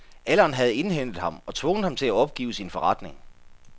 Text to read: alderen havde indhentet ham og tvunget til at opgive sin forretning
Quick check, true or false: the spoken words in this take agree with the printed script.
false